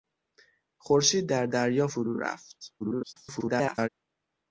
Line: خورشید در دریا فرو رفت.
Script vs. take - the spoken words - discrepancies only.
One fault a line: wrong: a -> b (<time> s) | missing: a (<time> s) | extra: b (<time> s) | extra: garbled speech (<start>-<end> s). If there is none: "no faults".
extra: garbled speech (2.8-3.9 s)